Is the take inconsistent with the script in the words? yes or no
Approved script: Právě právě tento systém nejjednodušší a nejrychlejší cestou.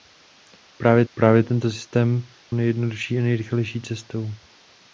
no